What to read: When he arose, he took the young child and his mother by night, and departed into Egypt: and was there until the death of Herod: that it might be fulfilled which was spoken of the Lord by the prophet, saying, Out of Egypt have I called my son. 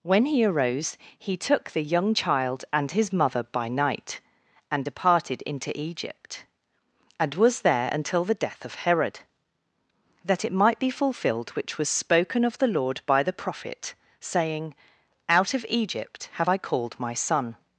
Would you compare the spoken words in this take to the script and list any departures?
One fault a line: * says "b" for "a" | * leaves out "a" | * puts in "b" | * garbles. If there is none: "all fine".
all fine